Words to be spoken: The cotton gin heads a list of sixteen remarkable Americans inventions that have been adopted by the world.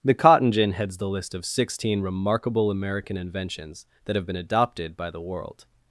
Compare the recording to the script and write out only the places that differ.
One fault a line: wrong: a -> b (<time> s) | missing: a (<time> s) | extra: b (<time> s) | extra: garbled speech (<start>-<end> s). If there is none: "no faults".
wrong: a -> the (1.0 s)
wrong: Americans -> American (2.7 s)